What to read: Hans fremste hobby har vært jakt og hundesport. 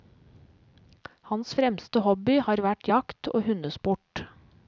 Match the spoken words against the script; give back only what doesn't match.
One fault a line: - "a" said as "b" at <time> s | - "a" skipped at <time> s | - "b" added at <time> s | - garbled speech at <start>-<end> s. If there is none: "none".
none